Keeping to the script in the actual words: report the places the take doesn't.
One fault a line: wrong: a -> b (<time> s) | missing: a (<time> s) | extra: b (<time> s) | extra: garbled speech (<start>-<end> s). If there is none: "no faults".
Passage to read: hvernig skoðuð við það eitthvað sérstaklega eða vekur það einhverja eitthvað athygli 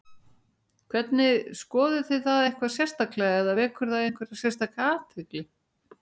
wrong: við -> þið (2.1 s)
wrong: eitthvað -> sérstaka (4.4 s)